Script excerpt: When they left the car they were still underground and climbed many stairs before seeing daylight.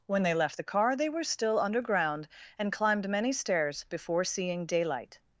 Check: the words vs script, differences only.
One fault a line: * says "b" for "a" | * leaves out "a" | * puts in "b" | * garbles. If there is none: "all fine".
all fine